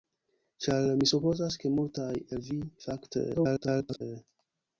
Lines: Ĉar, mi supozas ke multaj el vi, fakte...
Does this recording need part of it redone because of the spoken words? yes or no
yes